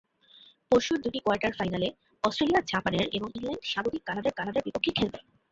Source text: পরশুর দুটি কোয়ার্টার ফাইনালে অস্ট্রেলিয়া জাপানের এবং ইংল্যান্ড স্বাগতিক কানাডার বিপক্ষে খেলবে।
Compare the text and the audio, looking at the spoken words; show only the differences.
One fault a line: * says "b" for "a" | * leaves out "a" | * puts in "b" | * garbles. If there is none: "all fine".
* puts in "কানাডার"